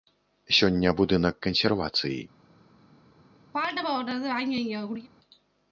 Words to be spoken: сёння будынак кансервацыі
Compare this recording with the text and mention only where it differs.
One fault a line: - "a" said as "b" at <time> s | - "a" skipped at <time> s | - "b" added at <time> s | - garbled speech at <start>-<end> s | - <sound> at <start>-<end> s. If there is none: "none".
- throat clearing at 3.5-5.1 s